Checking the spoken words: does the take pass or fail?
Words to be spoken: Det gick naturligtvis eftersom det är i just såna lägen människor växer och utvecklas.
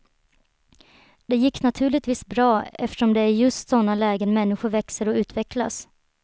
fail